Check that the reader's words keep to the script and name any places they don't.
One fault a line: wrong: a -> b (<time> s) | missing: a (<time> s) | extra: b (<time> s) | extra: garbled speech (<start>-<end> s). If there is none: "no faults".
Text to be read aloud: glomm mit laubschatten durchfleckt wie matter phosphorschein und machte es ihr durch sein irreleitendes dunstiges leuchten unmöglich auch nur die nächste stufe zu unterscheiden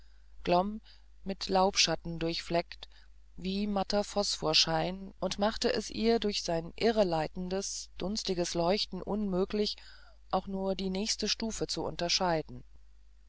no faults